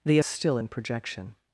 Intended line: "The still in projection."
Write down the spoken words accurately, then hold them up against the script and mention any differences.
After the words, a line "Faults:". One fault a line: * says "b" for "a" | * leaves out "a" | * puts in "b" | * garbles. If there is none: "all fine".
"The still in projection."
Faults:
all fine